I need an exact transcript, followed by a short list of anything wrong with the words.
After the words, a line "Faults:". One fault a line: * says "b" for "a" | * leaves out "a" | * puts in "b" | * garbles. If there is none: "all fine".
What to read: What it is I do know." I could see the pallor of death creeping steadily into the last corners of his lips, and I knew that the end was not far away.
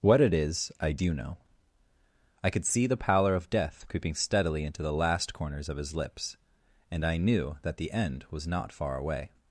What it is I do know." I could see the pallor of death creeping steadily into the last corners of his lips, and I knew that the end was not far away.
Faults:
all fine